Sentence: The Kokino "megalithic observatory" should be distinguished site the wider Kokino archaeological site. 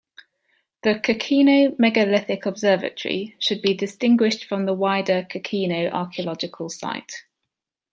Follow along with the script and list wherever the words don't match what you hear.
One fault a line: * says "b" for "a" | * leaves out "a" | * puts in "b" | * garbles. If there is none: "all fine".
* says "from" for "site"